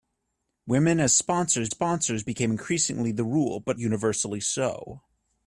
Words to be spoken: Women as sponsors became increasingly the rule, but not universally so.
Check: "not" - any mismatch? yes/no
yes